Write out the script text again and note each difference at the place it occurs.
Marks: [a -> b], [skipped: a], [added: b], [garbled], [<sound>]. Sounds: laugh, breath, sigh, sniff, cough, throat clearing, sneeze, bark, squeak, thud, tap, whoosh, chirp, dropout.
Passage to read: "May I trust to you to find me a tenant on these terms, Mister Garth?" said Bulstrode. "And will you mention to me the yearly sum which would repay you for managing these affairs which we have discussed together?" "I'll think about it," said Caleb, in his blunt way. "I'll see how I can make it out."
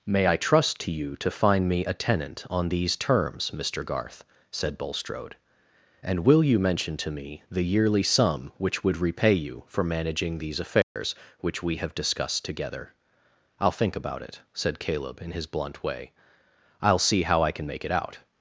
"May I trust to you to find me a tenant on these terms, Mister Garth?" said Bulstrode. "And will you mention to me the yearly sum which would repay you for managing these affairs [dropout] which we have discussed together?" "I'll think about it," said Caleb, in his blunt way. "I'll see how I can make it out."